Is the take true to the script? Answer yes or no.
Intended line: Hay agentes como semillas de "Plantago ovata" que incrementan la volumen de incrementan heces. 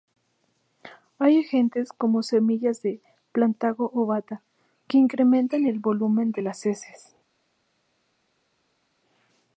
no